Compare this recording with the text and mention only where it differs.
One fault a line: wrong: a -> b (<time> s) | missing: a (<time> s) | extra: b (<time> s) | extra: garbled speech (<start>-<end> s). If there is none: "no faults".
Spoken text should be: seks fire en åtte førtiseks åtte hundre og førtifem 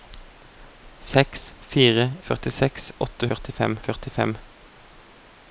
missing: en åtte (2.0 s)
wrong: hundre -> førtifem (3.3 s)